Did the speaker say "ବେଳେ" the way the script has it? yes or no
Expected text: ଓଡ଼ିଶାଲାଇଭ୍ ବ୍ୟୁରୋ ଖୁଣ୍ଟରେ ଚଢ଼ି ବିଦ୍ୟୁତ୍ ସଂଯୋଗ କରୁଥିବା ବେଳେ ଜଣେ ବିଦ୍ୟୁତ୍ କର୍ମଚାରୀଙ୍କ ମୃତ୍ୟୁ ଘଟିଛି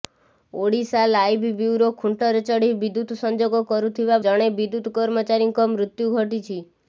no